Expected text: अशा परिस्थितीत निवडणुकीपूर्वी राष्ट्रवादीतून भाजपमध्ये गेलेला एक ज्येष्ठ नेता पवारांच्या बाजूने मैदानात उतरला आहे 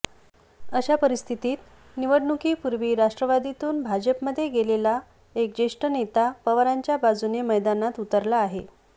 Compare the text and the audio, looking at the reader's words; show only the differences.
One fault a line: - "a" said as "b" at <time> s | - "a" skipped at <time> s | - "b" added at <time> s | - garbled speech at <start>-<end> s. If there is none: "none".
none